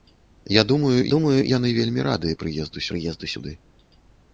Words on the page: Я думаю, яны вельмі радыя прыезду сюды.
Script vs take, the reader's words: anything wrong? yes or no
yes